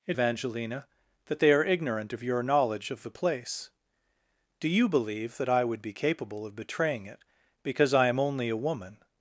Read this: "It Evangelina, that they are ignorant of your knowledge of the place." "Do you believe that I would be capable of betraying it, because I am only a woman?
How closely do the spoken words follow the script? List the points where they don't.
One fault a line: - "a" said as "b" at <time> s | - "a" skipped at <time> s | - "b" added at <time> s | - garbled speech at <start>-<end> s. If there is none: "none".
none